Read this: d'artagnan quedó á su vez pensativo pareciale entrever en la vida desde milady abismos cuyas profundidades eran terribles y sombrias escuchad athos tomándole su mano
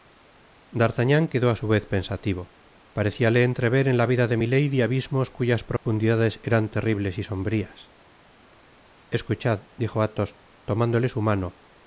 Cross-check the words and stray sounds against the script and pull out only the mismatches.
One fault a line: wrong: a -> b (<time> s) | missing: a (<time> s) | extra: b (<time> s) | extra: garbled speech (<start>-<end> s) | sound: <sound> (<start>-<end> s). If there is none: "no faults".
wrong: desde -> de (4.3 s)
sound: dropout (5.8-5.9 s)
extra: dijo (9.8 s)